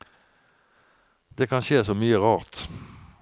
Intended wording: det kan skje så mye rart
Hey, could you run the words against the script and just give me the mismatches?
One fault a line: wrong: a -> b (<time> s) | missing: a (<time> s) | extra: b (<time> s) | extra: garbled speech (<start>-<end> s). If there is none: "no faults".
no faults